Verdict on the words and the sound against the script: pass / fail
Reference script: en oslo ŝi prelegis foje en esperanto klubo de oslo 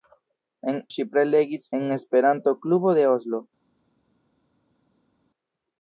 fail